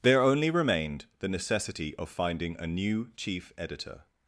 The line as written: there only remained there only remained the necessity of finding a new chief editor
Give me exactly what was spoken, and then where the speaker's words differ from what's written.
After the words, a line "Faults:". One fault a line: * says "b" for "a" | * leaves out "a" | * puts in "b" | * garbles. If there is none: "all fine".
there only remained the necessity of finding a new chief editor
Faults:
* leaves out "there only remained"